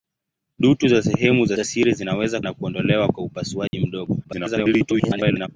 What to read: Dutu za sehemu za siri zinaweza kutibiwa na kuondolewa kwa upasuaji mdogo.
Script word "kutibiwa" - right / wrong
wrong